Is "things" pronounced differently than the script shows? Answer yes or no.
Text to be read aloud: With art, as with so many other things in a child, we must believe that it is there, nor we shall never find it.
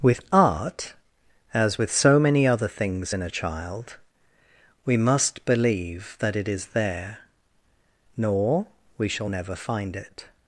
no